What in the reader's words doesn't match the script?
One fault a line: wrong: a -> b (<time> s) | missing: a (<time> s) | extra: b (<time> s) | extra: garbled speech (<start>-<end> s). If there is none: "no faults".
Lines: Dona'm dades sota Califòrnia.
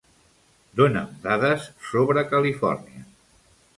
wrong: sota -> sobre (1.9 s)